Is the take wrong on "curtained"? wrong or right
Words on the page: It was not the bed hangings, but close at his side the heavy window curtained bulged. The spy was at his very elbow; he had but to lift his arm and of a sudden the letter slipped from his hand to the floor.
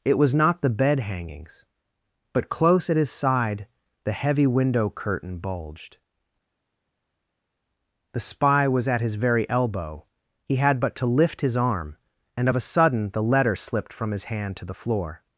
wrong